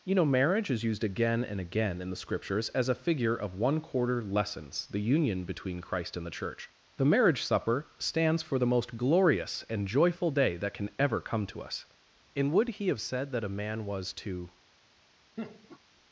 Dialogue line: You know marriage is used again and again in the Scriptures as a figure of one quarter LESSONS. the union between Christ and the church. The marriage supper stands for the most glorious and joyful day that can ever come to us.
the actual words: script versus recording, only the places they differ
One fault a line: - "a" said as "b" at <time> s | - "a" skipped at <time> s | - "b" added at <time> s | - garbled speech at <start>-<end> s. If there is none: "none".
- "And would he have said that a man was to" added at 12.3 s